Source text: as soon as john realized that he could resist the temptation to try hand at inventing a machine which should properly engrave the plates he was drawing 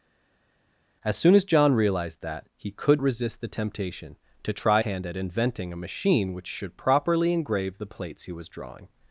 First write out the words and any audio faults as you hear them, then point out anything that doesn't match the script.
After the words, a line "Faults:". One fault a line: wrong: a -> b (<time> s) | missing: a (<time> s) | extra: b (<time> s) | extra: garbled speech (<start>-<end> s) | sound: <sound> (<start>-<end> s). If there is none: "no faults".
as soon as john realized that he could resist the temptation to try hand at inventing a machine which should properly engrave the plates he was drawing
Faults:
no faults